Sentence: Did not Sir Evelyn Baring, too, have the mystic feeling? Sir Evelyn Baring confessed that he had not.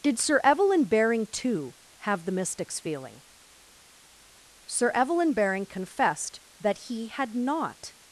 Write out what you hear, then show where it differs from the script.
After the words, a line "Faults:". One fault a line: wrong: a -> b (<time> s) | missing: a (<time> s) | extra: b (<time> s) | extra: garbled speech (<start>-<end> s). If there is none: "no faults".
Did Sir Evelyn Baring, too, have the mystics feeling? Sir Evelyn Baring confessed that he had not.
Faults:
missing: not (0.2 s)
wrong: mystic -> mystics (2.3 s)